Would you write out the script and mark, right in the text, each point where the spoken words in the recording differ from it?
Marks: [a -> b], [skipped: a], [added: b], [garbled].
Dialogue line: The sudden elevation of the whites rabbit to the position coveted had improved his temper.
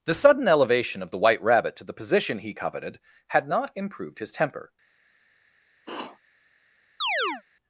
The sudden elevation of the [whites -> white] rabbit to the position [added: he] coveted had [added: not] improved his temper.